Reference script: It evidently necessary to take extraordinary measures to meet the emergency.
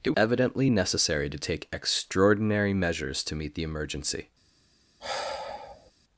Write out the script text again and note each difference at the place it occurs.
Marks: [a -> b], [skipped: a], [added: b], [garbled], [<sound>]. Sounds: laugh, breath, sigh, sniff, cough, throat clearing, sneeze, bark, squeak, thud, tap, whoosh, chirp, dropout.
It evidently necessary to take extraordinary measures to meet the emergency. [sigh]